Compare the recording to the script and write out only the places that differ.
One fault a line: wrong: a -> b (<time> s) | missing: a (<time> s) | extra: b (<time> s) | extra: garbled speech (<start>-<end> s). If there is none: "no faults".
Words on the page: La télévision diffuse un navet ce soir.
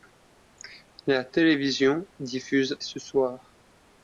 missing: un navet (2.8 s)